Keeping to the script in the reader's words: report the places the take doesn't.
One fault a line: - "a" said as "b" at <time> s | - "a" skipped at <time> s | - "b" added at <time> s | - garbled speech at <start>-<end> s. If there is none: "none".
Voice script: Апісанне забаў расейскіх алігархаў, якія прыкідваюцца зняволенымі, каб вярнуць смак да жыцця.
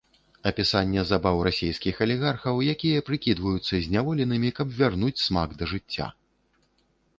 none